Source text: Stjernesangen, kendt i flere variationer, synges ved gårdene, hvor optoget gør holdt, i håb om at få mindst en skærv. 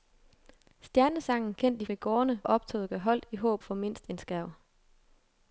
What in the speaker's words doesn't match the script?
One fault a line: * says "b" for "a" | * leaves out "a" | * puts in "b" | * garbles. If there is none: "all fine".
* leaves out "flere variationer synges"
* leaves out "hvor"
* leaves out "om"